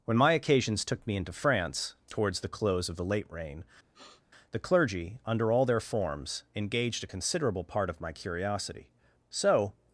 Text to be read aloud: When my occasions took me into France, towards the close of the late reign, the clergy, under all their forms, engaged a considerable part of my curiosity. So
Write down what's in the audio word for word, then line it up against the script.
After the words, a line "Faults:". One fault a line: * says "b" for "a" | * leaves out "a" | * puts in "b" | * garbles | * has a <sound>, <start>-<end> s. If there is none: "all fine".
When my occasions took me into France, towards the close of the late reign, the clergy, under all their forms, engaged a considerable part of my curiosity. So
Faults:
* has a sniff, 3.9-4.2 s